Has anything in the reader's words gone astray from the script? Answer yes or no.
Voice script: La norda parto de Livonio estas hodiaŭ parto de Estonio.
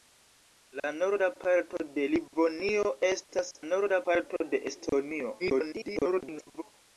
yes